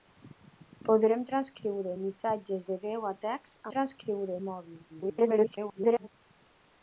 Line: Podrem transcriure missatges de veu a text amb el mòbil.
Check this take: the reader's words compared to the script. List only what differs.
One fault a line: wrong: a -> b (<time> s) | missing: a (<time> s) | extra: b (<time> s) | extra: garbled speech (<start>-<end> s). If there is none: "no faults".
wrong: amb -> transcriure (3.7 s)
extra: garbled speech (4.9-6.1 s)